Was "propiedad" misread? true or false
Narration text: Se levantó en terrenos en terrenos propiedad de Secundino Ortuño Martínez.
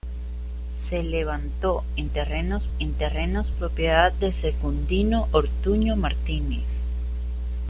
false